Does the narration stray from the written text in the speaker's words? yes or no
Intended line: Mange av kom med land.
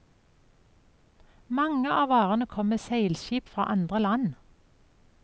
yes